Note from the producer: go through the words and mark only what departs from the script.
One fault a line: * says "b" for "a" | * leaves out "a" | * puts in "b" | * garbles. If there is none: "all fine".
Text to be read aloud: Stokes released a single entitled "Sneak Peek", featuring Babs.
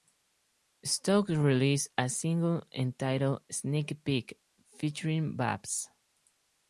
all fine